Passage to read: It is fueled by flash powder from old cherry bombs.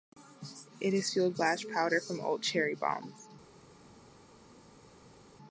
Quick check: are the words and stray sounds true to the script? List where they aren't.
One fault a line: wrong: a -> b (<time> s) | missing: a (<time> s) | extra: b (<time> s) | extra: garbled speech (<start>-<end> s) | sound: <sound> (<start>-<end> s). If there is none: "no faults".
missing: by (1.4 s)